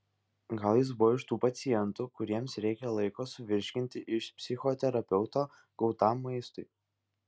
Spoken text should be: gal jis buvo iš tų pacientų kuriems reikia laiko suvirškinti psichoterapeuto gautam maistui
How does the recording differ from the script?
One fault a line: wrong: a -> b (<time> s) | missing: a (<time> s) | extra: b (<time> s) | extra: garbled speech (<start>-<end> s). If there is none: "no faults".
extra: iš (4.2 s)